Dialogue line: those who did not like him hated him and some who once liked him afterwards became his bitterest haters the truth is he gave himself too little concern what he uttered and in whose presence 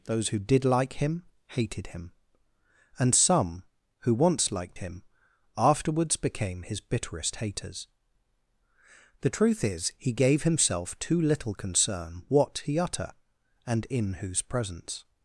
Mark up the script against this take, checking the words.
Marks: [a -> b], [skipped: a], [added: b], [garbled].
those who did [skipped: not] like him hated him and some who once liked him afterwards became his bitterest haters the truth is he gave himself too little concern what he [uttered -> utter] and in whose presence